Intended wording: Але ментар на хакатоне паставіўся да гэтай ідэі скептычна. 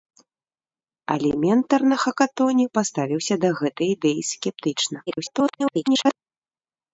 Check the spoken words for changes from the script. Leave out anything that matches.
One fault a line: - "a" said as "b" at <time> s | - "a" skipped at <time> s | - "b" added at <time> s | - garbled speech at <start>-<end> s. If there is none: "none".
- garbled speech at 5.1-6.2 s